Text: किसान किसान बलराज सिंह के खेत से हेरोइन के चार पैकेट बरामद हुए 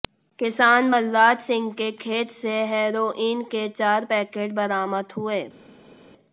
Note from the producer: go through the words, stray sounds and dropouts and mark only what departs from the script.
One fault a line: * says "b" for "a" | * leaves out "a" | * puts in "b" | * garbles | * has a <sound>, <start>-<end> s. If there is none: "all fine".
* leaves out "किसान"